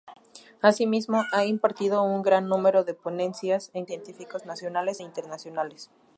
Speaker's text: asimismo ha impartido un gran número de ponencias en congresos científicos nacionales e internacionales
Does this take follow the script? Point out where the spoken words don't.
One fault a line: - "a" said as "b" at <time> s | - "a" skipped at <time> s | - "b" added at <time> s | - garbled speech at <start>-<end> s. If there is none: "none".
- "congresos" skipped at 3.9 s